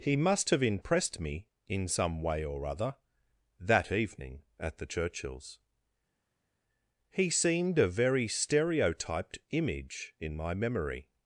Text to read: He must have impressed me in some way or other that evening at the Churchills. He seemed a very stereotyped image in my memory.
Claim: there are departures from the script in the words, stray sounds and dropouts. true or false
false